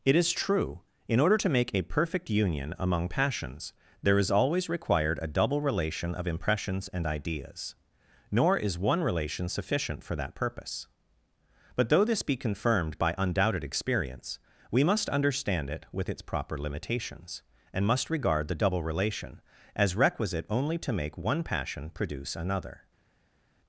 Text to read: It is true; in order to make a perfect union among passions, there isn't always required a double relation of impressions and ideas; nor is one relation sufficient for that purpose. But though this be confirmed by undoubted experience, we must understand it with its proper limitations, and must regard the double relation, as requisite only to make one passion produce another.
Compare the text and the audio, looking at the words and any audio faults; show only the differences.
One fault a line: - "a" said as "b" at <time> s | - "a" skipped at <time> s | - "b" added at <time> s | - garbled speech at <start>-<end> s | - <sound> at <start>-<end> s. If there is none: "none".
- "isn't" said as "is" at 4.2 s